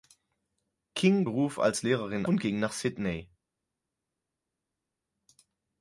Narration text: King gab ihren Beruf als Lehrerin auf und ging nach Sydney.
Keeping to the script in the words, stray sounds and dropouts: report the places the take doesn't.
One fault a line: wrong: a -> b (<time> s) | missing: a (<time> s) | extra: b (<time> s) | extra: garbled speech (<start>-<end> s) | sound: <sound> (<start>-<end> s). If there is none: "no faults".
missing: gab ihren (1.3 s)
missing: auf (2.3 s)